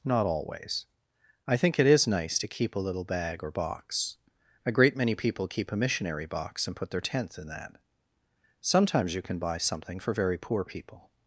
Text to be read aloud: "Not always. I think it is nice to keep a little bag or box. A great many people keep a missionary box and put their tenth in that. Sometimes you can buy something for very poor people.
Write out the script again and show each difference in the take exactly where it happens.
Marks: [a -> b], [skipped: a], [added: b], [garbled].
"Not always. I think it is nice to keep a little bag or box. A great many people keep a missionary box and put their tenth in that. Sometimes you can buy something for very poor people.